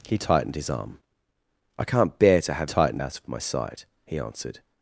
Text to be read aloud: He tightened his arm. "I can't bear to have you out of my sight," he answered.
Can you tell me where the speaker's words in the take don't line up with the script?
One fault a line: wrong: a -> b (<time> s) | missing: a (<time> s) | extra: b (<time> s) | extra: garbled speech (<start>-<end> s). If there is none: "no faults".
wrong: you -> tightened (2.6 s)